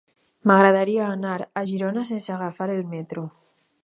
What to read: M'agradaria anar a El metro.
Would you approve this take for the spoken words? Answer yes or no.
no